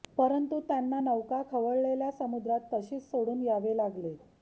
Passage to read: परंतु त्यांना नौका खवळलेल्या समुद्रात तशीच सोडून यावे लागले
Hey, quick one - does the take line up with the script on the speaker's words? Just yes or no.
yes